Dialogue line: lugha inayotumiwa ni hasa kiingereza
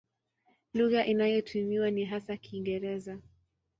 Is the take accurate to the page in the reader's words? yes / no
yes